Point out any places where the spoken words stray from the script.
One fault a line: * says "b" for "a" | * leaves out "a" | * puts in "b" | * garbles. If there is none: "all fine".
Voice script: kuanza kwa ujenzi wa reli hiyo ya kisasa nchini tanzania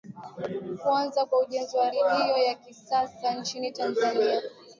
* leaves out "reli"